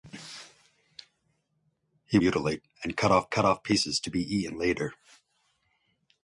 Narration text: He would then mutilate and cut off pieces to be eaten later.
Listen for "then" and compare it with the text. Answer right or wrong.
wrong